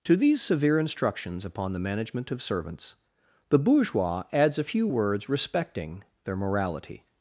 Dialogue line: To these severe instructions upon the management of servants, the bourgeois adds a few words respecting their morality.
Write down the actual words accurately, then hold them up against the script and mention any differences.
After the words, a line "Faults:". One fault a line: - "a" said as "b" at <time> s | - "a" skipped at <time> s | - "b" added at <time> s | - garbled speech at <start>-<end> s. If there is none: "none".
To these severe instructions upon the management of servants, the bourgeois adds a few words respecting their morality.
Faults:
none